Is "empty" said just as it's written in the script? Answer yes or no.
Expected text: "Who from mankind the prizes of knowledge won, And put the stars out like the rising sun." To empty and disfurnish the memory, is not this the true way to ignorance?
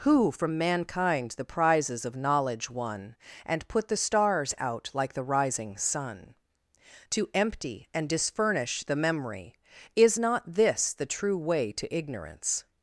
yes